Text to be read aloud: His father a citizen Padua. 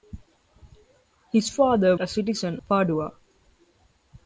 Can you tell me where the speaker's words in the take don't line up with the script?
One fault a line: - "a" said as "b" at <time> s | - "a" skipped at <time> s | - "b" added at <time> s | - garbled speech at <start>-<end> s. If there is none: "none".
none